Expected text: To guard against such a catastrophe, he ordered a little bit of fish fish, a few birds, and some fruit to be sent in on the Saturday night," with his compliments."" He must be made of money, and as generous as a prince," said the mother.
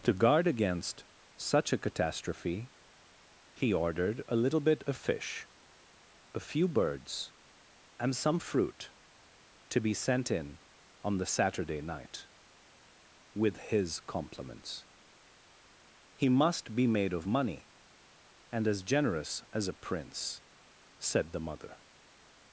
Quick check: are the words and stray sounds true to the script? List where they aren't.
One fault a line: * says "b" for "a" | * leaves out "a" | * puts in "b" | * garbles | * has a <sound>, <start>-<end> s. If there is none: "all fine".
* leaves out "fish"